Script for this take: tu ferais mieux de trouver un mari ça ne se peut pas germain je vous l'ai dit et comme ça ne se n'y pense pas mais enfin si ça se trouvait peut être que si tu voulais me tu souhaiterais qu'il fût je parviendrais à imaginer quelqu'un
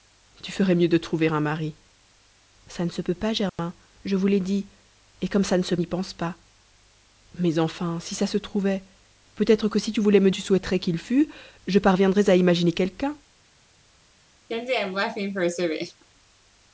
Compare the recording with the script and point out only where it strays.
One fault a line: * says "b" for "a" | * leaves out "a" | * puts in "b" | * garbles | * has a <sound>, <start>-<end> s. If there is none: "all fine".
* has a dropout, 3.5-3.6 s
* has a laugh, 14.5-16.0 s